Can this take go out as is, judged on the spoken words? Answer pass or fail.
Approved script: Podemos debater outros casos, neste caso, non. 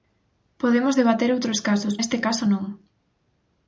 pass